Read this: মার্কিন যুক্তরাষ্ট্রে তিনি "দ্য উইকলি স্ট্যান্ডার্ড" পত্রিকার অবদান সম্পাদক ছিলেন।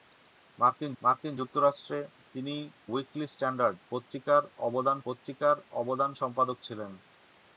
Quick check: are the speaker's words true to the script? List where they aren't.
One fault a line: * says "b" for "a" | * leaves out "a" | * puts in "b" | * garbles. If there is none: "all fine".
* puts in "মার্কিন"
* leaves out "দ্য"
* puts in "পত্রিকার অবদান"